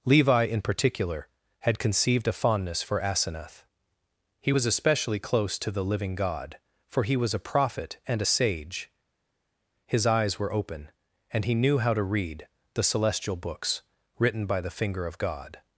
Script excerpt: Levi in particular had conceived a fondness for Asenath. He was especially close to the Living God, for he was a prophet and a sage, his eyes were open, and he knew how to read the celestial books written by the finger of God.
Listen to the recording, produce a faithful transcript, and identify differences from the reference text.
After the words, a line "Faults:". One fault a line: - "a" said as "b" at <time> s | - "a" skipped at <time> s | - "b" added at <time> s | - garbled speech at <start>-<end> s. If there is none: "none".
Levi in particular had conceived a fondness for Asenath. He was especially close to the Living God, for he was a prophet and a sage, his eyes were open, and he knew how to read the celestial books written by the finger of God.
Faults:
none